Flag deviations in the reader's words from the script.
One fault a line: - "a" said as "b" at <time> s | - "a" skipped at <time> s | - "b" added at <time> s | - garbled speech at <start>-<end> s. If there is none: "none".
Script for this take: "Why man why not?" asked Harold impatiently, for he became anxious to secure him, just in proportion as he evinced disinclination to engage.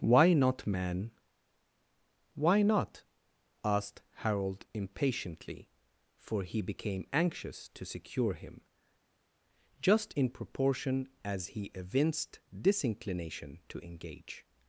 - "not" added at 0.3 s